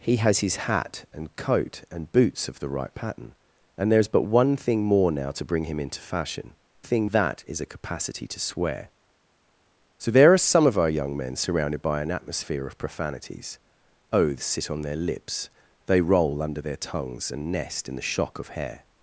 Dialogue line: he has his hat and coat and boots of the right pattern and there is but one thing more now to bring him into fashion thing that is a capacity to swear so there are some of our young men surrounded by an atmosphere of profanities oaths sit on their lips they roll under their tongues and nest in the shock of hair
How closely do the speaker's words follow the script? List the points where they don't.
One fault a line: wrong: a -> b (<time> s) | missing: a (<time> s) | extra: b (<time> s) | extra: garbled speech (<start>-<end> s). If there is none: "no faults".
no faults